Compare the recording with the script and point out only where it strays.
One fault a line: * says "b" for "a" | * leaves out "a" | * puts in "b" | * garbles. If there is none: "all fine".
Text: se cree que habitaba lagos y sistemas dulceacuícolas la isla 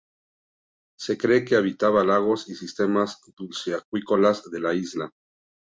* puts in "de"